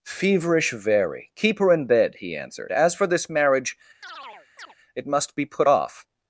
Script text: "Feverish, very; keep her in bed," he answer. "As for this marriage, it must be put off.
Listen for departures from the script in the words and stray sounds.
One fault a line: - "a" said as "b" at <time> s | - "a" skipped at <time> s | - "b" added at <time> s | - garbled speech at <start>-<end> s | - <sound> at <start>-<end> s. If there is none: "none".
- "answer" said as "answered" at 2.3 s
- chirp at 4.0-4.8 s